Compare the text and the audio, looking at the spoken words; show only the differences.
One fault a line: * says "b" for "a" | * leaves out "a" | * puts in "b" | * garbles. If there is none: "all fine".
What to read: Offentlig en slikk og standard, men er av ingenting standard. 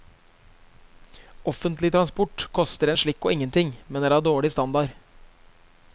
* puts in "transport koster"
* says "ingenting" for "standard"
* says "dårlig" for "ingenting"